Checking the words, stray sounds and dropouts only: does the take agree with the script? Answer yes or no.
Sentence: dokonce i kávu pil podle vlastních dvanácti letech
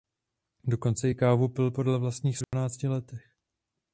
no